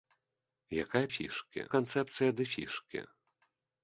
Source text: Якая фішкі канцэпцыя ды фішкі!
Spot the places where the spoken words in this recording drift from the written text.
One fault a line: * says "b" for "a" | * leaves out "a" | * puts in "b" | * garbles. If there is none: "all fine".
all fine